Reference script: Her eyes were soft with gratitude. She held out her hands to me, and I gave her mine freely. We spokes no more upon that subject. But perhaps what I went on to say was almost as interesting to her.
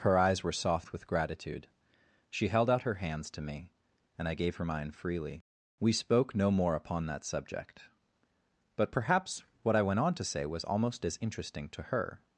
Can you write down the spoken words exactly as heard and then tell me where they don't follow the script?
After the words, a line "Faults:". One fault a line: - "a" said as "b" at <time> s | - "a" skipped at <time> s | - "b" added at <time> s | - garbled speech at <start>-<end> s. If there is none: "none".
Her eyes were soft with gratitude. She held out her hands to me, and I gave her mine freely. We spoke no more upon that subject. But perhaps what I went on to say was almost as interesting to her.
Faults:
- "spokes" said as "spoke" at 5.9 s